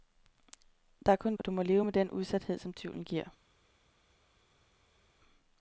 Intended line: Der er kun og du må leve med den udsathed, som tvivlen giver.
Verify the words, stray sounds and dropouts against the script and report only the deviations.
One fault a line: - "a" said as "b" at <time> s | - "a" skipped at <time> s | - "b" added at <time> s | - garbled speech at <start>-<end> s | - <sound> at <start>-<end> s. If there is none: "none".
none